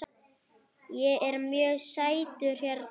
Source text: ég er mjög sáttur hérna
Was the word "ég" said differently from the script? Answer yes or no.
no